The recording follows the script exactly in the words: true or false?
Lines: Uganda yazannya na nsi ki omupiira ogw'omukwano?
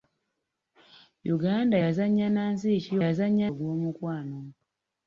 false